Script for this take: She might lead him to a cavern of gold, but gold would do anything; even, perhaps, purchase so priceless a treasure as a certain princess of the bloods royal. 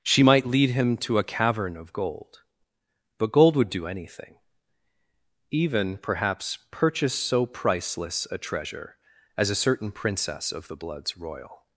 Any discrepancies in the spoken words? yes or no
no